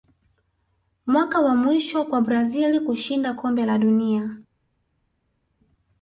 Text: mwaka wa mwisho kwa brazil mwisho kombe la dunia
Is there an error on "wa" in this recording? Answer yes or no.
no